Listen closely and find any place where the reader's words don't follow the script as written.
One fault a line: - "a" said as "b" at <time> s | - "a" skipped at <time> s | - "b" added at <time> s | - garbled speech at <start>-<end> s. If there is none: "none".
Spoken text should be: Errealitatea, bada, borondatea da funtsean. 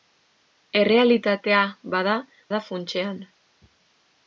- "borondatea" skipped at 2.1 s